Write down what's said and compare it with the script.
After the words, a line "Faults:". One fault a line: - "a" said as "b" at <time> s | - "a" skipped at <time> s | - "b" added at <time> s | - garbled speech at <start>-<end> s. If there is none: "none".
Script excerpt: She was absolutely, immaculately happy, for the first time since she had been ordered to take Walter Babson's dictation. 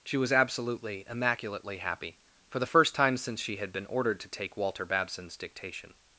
She was absolutely, immaculately happy, for the first time since she had been ordered to take Walter Babson's dictation.
Faults:
none